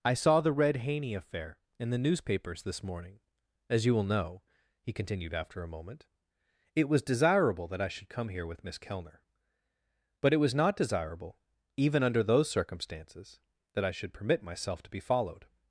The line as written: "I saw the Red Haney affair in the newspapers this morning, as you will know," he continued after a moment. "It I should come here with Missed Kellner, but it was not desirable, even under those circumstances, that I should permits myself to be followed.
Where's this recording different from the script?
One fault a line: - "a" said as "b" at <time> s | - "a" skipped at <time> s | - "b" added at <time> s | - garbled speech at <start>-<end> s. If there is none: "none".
- "was desirable that" added at 6.9 s
- "Missed" said as "Miss" at 8.6 s
- "permits" said as "permit" at 14.1 s